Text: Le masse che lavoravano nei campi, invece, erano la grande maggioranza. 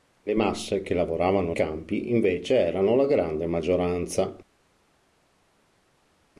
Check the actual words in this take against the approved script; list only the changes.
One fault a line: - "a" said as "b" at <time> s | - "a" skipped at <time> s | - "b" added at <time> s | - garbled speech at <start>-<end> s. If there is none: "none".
- "nei" skipped at 1.5 s